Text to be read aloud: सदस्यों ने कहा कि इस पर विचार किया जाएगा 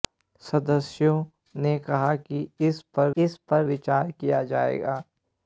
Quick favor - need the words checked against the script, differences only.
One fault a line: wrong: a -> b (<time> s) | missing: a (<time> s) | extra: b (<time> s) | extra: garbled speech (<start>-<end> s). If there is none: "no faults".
extra: इस पर (3.2 s)